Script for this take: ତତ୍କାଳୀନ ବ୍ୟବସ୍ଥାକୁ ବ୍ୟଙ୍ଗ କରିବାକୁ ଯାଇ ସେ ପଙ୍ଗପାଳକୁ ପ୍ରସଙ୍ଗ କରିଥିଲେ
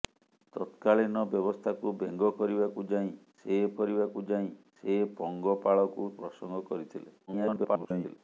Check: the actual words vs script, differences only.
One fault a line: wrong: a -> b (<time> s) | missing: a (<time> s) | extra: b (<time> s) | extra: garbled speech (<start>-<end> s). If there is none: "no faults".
extra: କରିବାକୁ ଯାଇ ସେ (3.8 s)
extra: garbled speech (7.3-8.2 s)